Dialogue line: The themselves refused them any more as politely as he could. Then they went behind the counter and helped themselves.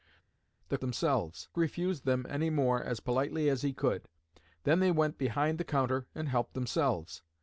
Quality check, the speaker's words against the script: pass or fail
pass